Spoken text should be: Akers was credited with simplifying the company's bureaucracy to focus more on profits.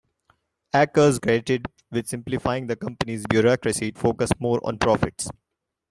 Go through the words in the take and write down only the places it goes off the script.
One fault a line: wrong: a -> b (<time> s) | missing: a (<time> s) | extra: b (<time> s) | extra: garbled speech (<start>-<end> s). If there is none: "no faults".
missing: was (1.2 s)
missing: to (3.9 s)